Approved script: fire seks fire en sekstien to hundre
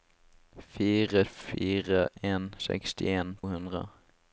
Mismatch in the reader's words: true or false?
true